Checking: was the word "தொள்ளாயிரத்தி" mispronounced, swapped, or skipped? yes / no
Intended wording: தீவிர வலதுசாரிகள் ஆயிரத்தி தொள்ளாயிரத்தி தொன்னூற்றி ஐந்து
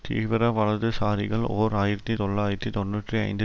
no